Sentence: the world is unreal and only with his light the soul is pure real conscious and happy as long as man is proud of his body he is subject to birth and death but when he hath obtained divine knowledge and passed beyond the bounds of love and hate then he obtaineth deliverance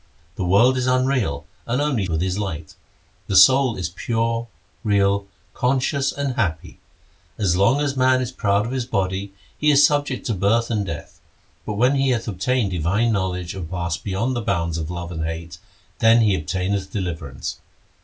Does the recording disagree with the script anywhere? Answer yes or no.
no